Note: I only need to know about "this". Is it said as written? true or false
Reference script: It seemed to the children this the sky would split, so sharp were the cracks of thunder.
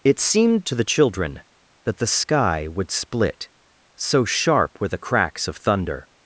false